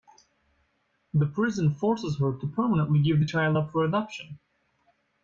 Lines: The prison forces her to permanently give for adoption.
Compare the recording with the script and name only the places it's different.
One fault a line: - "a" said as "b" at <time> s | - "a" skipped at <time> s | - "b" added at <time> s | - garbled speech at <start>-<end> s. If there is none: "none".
- "the child up" added at 3.2 s